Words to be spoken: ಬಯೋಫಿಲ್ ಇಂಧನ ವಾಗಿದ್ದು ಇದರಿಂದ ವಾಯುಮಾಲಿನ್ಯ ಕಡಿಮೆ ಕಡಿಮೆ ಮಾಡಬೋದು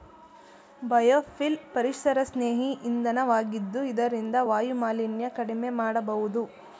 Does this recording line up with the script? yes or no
no